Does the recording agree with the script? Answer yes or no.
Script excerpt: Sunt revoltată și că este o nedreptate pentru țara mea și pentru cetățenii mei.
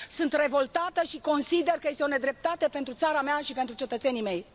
no